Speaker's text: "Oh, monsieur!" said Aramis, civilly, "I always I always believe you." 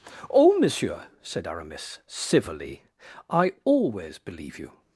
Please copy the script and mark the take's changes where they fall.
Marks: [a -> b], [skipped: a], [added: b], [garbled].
"Oh, monsieur!" said Aramis, civilly, "I always [skipped: I always] believe you."